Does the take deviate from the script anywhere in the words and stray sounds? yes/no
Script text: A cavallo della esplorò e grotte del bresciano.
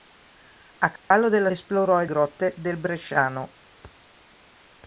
yes